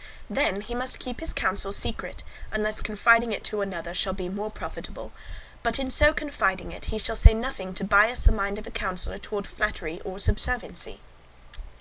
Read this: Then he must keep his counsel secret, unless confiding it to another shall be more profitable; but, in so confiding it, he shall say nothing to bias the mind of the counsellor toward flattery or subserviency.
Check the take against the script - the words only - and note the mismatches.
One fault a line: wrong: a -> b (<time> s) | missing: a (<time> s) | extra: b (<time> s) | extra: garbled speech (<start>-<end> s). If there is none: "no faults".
no faults